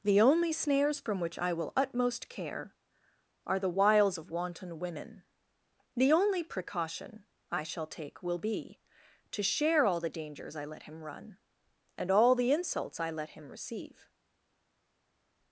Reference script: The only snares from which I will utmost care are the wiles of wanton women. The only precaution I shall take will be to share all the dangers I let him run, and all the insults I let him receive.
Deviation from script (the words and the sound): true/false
false